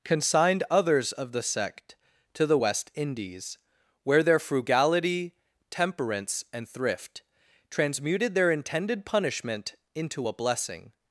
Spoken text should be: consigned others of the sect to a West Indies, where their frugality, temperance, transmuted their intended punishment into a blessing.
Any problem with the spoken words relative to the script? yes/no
yes